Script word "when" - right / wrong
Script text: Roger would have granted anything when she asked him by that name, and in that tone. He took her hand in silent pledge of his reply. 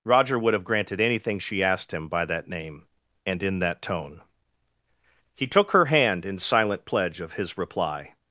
wrong